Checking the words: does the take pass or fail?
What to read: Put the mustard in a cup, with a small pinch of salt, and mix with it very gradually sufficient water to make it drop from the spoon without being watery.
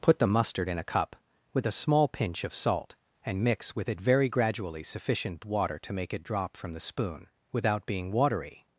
pass